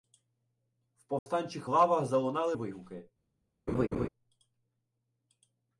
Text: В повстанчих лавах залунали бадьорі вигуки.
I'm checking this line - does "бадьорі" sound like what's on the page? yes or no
no